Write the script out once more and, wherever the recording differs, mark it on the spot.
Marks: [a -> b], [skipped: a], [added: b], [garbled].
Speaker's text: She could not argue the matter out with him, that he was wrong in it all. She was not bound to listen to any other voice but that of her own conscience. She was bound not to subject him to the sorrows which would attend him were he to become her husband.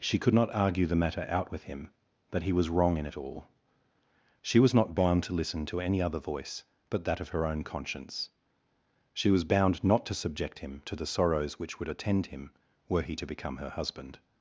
She could not argue the matter out with him, that he was wrong in it all. She was not bound to listen to any other voice but that of her own conscience. She was bound not to subject him to the sorrows which would attend him were he to become her husband.